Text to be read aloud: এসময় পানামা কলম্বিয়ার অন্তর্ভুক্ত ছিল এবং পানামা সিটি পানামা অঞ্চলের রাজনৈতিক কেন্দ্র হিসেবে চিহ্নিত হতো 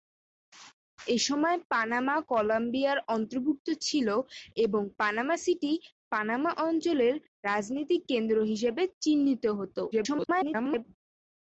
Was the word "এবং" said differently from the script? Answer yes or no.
no